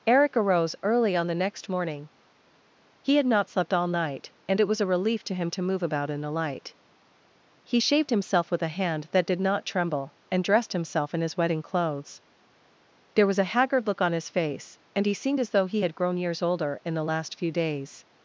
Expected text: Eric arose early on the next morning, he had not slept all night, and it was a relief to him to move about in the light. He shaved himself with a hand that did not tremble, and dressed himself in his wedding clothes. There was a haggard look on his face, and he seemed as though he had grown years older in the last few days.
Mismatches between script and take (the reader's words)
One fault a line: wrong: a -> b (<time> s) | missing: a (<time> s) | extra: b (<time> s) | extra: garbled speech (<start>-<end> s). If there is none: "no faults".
no faults